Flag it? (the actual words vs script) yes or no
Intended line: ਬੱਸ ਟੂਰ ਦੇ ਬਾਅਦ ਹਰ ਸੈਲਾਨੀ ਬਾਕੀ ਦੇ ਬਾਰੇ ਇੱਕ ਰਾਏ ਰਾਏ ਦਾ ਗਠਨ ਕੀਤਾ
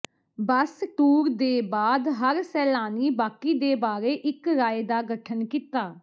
yes